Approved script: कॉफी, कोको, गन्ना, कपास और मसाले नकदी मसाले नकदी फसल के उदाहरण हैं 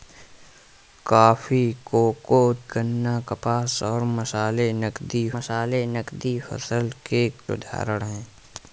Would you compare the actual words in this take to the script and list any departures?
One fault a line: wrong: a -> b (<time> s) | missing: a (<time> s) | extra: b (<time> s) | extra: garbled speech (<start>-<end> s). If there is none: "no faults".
no faults